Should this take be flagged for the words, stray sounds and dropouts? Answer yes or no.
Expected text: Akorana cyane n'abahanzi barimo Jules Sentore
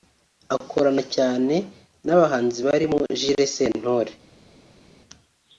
no